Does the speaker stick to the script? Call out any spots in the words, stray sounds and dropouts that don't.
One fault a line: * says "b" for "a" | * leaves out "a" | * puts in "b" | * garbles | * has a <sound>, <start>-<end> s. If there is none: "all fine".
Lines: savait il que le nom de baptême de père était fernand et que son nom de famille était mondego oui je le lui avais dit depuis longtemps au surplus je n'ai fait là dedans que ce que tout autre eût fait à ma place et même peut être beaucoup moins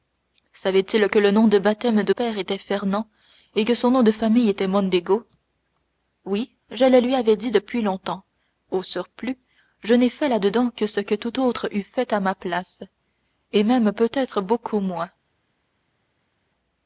all fine